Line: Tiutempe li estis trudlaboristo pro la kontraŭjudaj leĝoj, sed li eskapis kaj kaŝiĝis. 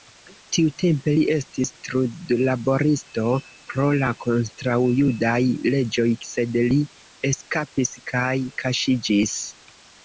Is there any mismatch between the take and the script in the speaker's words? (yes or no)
no